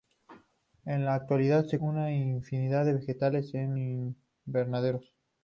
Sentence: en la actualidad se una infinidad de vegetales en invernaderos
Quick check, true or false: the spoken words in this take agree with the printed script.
true